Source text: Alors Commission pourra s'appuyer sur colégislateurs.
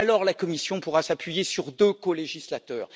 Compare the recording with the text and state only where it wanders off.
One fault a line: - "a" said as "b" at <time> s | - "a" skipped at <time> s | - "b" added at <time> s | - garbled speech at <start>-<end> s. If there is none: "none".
- "la" added at 0.2 s
- "deux" added at 1.7 s